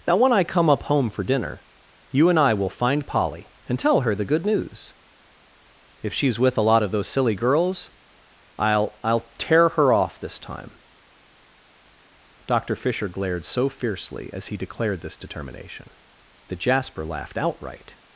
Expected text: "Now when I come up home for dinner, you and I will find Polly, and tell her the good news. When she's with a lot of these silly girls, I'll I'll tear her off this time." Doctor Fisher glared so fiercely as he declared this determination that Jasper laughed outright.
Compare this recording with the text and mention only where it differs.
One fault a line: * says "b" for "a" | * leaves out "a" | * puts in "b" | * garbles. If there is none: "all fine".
* says "If" for "When"
* says "those" for "these"